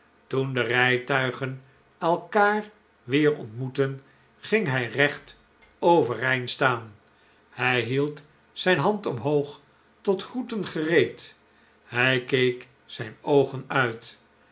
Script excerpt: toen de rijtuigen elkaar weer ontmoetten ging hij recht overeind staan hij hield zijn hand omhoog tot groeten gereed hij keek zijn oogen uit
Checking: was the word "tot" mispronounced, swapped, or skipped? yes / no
no